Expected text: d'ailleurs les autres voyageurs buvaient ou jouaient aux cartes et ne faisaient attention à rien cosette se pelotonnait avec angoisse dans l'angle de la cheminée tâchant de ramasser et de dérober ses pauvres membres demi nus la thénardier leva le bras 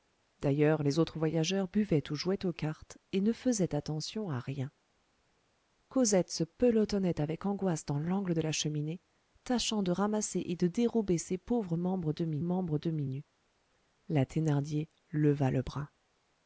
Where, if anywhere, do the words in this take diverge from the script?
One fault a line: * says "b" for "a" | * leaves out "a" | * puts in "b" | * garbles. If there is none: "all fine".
* puts in "membres demi"